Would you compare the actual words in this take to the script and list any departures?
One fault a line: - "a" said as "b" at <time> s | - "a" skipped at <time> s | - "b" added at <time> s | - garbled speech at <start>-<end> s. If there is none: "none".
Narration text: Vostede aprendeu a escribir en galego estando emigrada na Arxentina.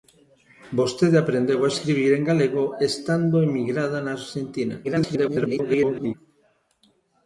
- garbled speech at 4.8-6.1 s